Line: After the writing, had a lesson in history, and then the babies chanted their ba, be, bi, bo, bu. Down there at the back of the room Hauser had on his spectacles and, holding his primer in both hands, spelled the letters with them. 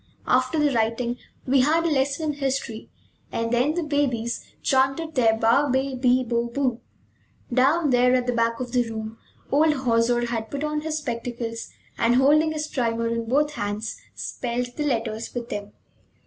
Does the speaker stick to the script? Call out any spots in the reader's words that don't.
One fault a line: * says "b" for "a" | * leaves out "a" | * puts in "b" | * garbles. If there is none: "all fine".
* puts in "we"
* puts in "old"
* puts in "put"